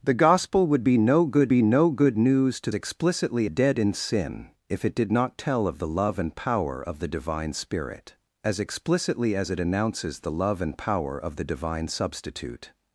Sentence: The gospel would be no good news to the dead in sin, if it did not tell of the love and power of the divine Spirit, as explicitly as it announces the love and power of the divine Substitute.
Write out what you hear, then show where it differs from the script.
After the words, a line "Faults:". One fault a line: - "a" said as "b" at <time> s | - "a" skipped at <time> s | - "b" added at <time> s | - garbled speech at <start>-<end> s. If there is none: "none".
The gospel would be no good be no good news to explicitly dead in sin, if it did not tell of the love and power of the divine Spirit, as explicitly as it announces the love and power of the divine Substitute.
Faults:
- "be no good" added at 1.5 s
- "the" said as "explicitly" at 2.7 s